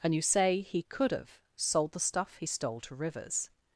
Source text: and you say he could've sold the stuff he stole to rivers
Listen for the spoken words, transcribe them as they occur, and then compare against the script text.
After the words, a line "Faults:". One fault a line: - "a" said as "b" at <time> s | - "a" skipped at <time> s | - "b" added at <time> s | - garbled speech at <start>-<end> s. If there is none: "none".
and you say he could've sold the stuff he stole to rivers
Faults:
none